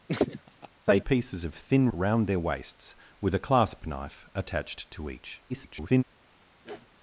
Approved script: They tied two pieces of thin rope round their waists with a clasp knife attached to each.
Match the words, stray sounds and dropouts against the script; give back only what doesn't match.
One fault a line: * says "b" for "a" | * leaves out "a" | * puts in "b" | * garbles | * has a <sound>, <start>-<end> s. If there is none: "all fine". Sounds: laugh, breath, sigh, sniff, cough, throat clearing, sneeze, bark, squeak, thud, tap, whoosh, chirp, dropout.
* has a laugh, 0.1-0.7 s
* leaves out "tied two"
* leaves out "rope"
* garbles
* has a sniff, 6.7-6.9 s